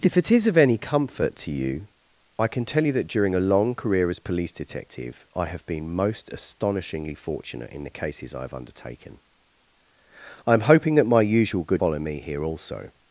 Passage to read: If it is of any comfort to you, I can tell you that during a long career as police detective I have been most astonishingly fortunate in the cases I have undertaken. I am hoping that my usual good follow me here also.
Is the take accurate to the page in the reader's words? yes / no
yes